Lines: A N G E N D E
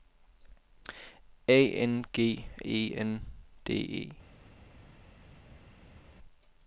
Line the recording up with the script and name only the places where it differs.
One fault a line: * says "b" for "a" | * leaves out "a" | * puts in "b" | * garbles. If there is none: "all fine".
all fine